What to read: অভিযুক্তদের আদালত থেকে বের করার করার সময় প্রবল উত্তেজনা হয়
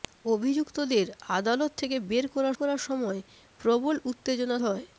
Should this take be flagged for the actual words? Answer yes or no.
no